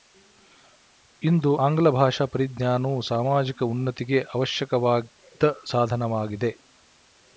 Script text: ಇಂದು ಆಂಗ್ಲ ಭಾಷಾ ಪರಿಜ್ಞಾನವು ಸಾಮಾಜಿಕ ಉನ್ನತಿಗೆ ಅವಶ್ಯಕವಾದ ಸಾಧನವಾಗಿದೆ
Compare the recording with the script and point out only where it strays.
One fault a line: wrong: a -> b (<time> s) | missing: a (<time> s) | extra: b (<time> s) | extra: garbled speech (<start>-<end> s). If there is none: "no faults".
no faults